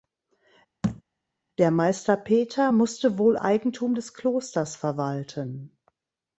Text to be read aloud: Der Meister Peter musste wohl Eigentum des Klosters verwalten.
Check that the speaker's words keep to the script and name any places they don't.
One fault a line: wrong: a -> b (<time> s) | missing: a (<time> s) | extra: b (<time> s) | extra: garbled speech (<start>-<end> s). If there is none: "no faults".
no faults